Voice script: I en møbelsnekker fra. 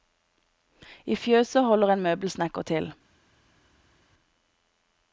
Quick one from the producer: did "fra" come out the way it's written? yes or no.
no